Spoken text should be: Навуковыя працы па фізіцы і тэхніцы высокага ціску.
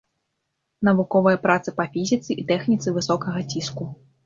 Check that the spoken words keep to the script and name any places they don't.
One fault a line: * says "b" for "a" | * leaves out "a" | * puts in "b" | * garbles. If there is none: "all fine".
all fine